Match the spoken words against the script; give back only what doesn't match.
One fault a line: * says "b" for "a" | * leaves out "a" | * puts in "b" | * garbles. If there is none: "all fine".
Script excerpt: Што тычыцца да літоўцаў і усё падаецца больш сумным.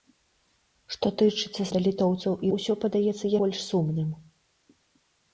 all fine